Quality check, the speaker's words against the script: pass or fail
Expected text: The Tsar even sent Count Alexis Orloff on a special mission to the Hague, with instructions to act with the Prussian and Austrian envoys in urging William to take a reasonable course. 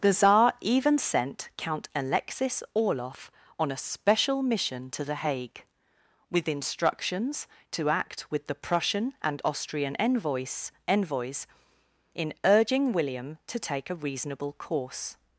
fail